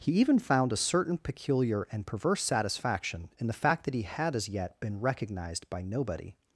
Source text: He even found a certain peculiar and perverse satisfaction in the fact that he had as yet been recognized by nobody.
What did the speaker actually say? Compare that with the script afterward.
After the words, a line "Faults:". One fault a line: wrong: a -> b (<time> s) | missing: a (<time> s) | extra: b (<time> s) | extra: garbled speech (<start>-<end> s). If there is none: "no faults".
He even found a certain peculiar and perverse satisfaction in the fact that he had as yet been recognized by nobody.
Faults:
no faults